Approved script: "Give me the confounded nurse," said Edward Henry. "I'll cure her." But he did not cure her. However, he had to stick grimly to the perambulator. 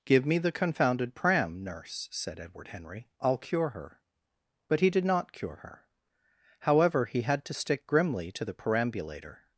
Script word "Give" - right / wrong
right